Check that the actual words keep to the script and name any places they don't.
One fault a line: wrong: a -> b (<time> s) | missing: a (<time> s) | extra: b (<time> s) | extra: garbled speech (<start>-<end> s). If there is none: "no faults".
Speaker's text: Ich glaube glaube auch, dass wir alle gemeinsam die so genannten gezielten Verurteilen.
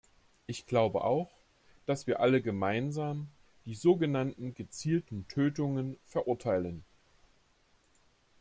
missing: glaube (1.1 s)
extra: Tötungen (5.3 s)